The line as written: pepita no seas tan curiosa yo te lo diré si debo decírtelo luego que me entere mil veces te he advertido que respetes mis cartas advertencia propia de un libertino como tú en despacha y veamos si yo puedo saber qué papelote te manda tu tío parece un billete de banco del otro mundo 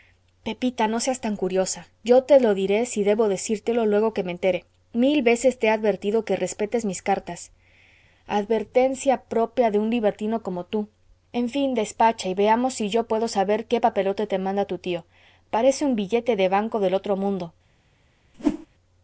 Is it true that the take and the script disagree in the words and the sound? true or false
true